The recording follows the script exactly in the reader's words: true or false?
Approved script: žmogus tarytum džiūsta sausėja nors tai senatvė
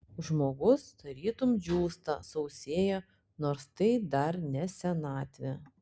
false